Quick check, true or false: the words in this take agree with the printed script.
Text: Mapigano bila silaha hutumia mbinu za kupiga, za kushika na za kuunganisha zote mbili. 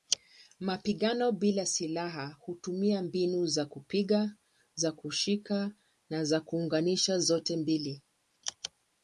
true